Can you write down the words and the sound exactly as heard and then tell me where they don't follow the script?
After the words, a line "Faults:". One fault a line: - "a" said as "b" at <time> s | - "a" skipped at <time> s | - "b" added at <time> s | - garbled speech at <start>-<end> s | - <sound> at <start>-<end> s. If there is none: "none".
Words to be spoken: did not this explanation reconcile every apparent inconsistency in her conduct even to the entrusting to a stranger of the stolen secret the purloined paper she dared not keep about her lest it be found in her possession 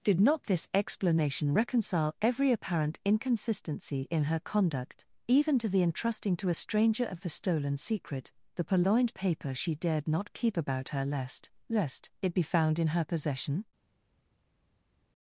did not this explanation reconcile every apparent inconsistency in her conduct even to the entrusting to a stranger of the stolen secret the purloined paper she dared not keep about her lest lest it be found in her possession
Faults:
- "lest" added at 11.7 s